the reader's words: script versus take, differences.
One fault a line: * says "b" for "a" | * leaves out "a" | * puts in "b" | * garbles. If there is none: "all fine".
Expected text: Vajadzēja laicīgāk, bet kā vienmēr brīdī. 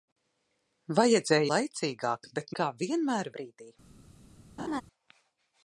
all fine